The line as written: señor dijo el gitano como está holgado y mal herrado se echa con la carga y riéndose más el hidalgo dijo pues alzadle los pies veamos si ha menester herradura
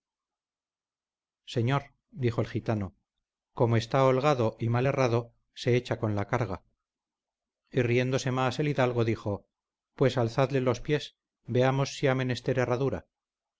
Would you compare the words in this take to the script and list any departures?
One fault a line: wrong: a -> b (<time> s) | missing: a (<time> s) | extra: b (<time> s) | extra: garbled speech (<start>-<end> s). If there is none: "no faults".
no faults